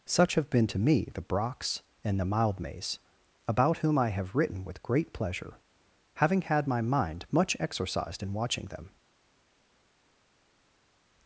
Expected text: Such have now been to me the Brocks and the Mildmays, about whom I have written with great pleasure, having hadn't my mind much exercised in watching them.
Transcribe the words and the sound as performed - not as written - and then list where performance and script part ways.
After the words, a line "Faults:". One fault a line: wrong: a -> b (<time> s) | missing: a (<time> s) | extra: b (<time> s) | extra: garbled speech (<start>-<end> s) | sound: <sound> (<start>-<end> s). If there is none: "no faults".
Such have been to me the Brocks and the Mildmays, about whom I have written with great pleasure, having had my mind much exercised in watching them.
Faults:
missing: now (0.5 s)
wrong: hadn't -> had (6.4 s)